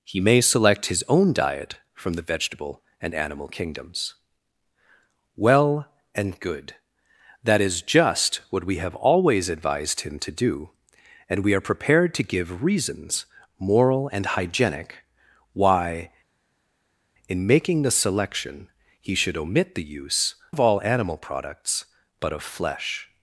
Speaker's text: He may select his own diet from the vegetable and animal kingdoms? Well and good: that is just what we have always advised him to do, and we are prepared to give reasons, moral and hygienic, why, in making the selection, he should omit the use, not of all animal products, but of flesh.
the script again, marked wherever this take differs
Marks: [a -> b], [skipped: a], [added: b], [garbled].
He may select his own diet from the vegetable and animal kingdoms? Well and good: that is just what we have always advised him to do, and we are prepared to give reasons, moral and hygienic, why, in making the selection, he should omit the use, [skipped: not] of all animal products, but of flesh.